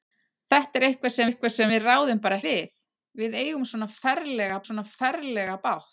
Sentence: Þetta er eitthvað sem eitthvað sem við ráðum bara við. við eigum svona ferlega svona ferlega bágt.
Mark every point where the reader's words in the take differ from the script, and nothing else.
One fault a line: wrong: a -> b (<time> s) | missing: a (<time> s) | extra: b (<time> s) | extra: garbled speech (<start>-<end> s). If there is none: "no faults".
no faults